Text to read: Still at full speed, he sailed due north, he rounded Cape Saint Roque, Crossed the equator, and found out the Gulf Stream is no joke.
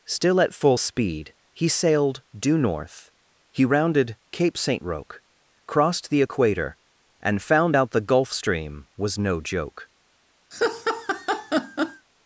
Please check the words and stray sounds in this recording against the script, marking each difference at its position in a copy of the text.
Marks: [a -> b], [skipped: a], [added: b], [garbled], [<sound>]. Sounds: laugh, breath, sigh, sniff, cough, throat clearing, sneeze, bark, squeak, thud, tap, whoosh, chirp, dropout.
Still at full speed, he sailed due north, he rounded Cape Saint Roque, Crossed the equator, and found out the Gulf Stream [is -> was] no joke. [laugh]